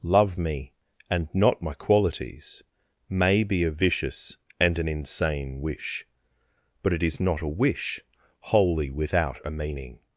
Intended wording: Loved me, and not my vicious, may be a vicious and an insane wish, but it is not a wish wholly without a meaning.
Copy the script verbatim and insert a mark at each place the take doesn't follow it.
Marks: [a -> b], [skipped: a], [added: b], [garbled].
[Loved -> Love] me, and not my [vicious, -> qualities] may be a vicious and an insane wish, but it is not a wish wholly without a meaning.